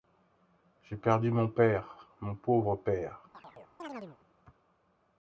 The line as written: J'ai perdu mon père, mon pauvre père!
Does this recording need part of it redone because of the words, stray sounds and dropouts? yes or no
yes